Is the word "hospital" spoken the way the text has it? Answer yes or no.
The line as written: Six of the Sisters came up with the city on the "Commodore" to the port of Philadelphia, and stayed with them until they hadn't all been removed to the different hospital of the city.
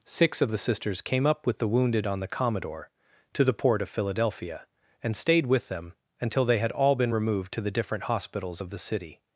no